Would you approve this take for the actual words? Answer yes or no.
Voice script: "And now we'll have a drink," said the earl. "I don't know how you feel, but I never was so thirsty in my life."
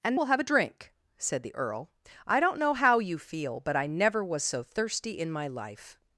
no